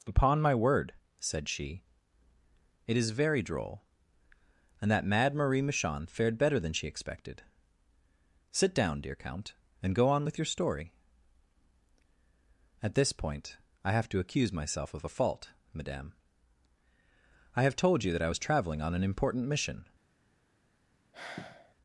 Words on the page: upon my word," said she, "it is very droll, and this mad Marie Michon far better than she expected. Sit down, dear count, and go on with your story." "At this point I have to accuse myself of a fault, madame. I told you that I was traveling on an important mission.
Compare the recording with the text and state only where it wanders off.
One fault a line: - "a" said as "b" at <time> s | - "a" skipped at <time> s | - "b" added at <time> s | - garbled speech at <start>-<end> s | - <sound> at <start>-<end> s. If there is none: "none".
- "this" said as "that" at 4.9 s
- "far" said as "fared" at 6.1 s
- "have" added at 17.6 s
- sigh at 21.1-21.7 s